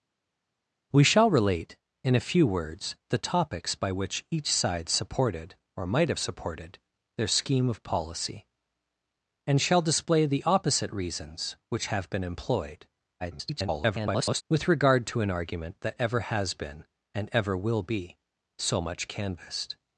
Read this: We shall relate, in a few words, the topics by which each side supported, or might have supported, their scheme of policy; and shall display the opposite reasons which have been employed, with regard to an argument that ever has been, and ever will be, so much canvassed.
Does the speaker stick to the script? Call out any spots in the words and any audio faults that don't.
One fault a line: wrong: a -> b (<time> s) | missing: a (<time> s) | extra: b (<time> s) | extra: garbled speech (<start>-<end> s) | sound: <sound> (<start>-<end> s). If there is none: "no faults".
extra: garbled speech (13.2-14.4 s)